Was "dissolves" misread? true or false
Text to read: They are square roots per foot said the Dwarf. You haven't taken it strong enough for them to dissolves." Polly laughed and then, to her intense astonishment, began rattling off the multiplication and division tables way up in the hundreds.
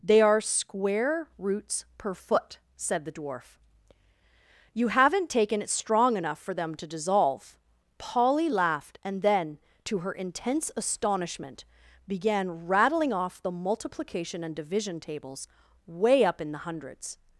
true